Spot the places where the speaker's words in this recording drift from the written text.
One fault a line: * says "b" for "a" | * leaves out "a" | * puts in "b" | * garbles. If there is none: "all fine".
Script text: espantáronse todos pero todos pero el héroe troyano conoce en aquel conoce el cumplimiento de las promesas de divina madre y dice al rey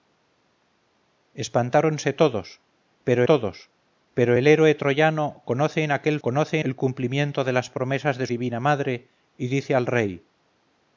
all fine